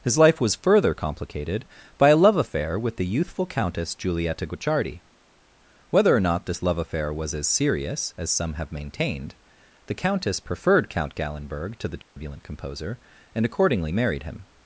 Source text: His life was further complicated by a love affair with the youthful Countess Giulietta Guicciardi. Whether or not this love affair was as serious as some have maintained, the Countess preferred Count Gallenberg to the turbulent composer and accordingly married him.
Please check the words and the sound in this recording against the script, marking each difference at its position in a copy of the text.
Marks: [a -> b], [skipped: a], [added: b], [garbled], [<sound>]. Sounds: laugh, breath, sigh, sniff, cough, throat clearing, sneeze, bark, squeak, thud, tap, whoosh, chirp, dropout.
His life was further complicated by a love affair with the youthful Countess Giulietta Guicciardi. Whether or not this love affair was as serious as some have maintained, the Countess preferred Count Gallenberg to the turbulent [dropout] composer and accordingly married him.